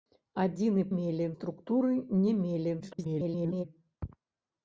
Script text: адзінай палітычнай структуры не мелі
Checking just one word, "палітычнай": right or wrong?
wrong